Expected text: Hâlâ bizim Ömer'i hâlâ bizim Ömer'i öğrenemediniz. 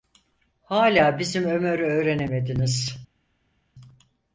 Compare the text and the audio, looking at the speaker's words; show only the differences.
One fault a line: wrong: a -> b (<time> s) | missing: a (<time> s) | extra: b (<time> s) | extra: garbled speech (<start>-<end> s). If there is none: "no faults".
missing: hâlâ bizim Ömer'i (1.8 s)